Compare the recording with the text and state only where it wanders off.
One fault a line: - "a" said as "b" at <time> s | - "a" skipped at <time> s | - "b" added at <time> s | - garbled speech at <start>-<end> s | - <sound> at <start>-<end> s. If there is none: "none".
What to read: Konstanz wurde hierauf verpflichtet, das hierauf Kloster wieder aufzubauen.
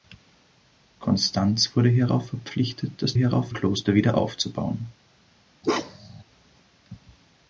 - bark at 5.6-6.2 s